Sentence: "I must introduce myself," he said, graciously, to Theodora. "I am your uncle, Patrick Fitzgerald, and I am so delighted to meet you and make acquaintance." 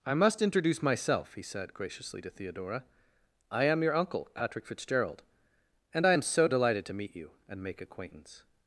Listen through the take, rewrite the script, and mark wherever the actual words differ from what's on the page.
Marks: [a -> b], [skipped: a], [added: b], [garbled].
"I must introduce myself," he said, graciously, to Theodora. "I am your uncle, Patrick Fitzgerald, and I am so delighted to meet you and make acquaintance."